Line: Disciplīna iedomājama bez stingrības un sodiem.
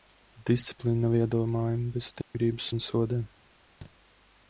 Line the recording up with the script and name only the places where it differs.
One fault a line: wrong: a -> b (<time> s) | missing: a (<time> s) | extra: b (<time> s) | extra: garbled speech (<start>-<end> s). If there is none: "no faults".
extra: nav (1.0 s)